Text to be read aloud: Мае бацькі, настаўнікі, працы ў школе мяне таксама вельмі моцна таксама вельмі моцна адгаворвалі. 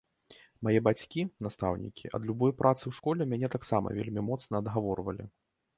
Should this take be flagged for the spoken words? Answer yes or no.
yes